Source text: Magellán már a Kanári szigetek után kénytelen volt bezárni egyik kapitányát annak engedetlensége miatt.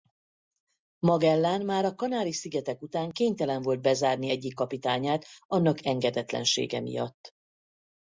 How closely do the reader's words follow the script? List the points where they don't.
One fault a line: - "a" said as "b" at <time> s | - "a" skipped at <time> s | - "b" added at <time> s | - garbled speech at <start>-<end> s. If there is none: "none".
none